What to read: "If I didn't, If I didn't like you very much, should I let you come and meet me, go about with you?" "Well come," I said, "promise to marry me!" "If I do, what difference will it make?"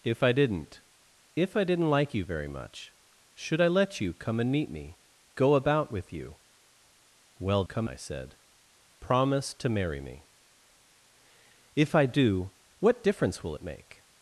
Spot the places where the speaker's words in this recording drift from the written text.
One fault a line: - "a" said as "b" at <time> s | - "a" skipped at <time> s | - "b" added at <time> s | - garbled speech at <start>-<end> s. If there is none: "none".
none